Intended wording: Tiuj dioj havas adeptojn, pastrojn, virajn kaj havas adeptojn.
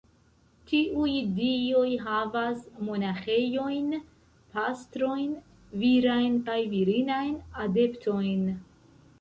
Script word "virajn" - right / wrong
right